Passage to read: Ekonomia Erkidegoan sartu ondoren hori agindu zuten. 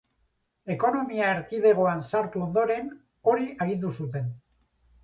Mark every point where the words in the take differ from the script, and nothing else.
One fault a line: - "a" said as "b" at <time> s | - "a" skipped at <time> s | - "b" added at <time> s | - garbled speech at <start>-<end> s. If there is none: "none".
none